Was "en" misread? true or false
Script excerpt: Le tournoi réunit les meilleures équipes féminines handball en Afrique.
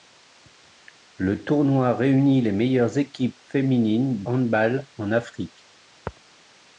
false